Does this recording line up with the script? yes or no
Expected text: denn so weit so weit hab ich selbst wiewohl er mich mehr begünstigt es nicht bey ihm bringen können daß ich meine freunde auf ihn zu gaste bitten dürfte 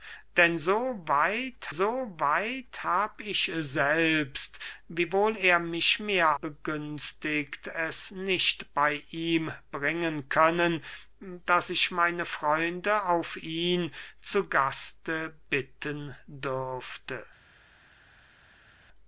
yes